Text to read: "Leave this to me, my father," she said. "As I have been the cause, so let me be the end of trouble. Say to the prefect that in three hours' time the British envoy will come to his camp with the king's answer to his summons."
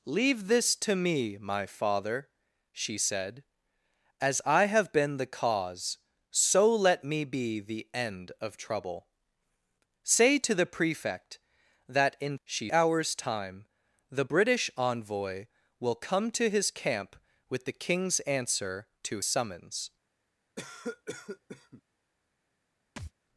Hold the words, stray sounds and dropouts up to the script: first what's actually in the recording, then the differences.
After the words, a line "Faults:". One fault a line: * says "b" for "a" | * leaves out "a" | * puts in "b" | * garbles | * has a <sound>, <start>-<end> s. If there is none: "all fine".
"Leave this to me, my father," she said. "As I have been the cause, so let me be the end of trouble. Say to the prefect that in she hours' time the British envoy will come to his camp with the king's answer to summons."
Faults:
* says "she" for "three"
* leaves out "his"
* has a cough, 20.6-21.8 s
* has a thud, 23.0-23.1 s